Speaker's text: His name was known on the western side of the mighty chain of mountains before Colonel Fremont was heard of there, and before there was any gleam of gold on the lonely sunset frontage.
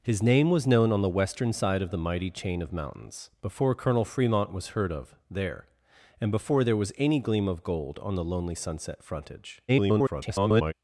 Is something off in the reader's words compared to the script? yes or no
yes